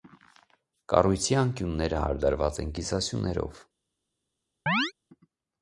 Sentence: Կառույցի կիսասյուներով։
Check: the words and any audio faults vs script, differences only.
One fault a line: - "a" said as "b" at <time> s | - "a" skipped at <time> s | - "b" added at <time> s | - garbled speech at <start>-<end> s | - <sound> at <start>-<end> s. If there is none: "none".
- "անկյունները հարդարված են" added at 1.4 s
- chirp at 4.7-4.9 s